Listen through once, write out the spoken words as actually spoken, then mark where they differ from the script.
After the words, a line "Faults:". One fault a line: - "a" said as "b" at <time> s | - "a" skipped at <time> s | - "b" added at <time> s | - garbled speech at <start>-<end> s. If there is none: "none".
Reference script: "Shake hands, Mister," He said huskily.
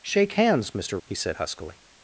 "Shake hands, Mister," He said huskily.
Faults:
none